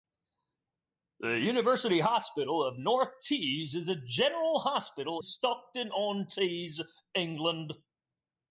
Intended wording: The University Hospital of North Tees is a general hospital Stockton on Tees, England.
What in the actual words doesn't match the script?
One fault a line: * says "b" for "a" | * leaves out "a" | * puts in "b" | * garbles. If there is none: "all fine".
all fine